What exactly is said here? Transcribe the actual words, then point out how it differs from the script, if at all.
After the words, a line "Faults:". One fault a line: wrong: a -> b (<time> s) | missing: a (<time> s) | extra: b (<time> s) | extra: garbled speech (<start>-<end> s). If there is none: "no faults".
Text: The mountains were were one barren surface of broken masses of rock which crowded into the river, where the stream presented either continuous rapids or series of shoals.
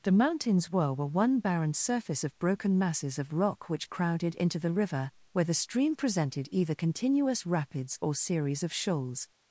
The mountains were were one barren surface of broken masses of rock which crowded into the river, where the stream presented either continuous rapids or series of shoals.
Faults:
no faults